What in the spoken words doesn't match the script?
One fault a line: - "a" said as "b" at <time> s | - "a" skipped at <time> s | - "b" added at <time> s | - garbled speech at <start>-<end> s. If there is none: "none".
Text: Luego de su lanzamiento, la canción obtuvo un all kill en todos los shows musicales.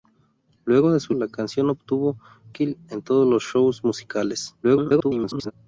- "lanzamiento" skipped at 1.1 s
- "un all" skipped at 2.2 s
- garbled speech at 4.6-5.5 s